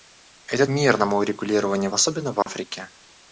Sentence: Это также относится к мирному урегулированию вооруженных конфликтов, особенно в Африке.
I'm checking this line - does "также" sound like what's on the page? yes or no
no